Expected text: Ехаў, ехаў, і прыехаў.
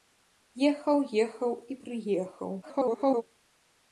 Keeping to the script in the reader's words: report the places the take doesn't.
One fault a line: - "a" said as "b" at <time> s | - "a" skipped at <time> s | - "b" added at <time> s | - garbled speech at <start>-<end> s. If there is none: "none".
- garbled speech at 2.6-3.2 s